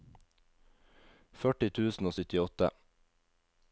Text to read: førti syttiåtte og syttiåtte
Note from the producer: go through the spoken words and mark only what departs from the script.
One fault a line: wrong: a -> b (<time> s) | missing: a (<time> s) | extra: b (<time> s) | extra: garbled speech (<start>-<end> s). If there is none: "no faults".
wrong: syttiåtte -> tusen (1.8 s)